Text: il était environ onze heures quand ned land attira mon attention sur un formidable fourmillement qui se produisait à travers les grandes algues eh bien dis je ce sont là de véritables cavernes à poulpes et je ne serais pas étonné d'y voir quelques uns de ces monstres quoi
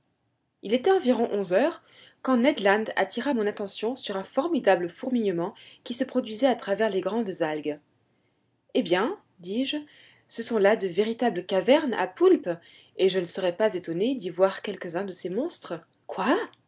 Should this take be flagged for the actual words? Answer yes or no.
no